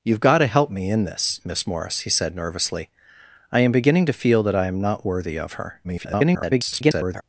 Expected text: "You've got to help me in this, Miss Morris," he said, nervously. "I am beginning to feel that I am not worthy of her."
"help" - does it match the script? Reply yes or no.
yes